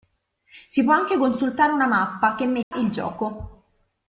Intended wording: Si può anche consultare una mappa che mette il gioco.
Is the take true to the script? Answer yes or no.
yes